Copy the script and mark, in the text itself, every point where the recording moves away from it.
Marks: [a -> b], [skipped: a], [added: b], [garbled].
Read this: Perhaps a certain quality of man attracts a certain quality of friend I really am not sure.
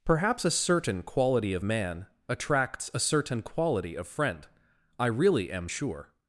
Perhaps a certain quality of man attracts a certain quality of friend I really am [skipped: not] sure.